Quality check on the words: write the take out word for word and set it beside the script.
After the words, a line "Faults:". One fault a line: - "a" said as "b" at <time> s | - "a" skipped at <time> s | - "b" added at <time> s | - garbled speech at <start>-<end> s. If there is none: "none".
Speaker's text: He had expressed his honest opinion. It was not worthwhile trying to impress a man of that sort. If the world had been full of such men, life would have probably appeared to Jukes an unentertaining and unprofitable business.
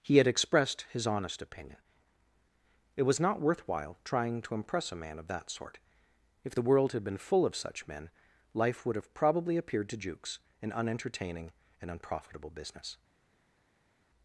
He had expressed his honest opinion. It was not worthwhile trying to impress a man of that sort. If the world had been full of such men, life would have probably appeared to Jukes an unentertaining and unprofitable business.
Faults:
none